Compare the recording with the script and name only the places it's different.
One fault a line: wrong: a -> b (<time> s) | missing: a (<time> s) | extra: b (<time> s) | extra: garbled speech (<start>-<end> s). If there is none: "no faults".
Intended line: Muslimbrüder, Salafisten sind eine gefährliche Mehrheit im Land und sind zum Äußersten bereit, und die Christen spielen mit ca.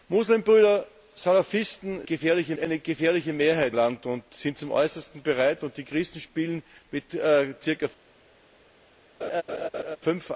wrong: sind -> gefährliche (2.0 s)
missing: im (3.8 s)